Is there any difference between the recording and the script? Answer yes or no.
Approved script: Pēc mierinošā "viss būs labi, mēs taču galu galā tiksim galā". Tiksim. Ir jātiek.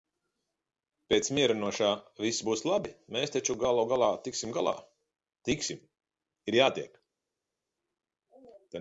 no